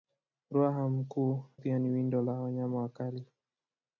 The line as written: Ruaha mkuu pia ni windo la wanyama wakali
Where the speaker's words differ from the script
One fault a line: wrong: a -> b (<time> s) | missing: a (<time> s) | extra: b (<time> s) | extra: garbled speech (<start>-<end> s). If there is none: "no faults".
no faults